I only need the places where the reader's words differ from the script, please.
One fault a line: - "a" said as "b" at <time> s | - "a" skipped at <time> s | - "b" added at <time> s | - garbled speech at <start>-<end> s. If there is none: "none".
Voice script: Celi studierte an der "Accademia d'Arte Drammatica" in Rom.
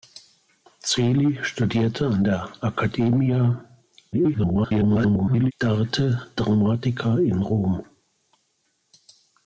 - garbled speech at 4.1-5.5 s